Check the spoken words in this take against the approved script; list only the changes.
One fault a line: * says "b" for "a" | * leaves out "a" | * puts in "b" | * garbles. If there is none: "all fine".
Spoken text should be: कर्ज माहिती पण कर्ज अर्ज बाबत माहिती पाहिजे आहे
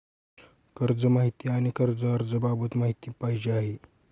* says "आणि" for "पण"